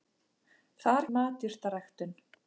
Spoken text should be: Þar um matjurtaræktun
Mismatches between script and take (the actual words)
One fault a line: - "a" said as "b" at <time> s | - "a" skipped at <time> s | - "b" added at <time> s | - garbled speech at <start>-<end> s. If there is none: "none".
none